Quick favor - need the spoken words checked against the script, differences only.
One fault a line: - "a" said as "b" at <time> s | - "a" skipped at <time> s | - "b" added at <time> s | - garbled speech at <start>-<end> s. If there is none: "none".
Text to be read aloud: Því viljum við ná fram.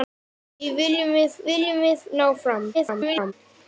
- "viljum við" added at 1.5 s
- garbled speech at 2.7-3.3 s